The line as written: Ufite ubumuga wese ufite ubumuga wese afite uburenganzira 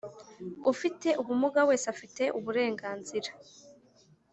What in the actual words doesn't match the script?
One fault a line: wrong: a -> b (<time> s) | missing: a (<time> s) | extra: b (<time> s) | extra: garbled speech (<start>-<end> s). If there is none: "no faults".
missing: ufite ubumuga wese (1.9 s)